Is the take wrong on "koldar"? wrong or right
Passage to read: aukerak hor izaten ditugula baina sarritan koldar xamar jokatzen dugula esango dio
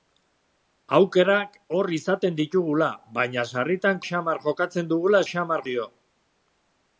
wrong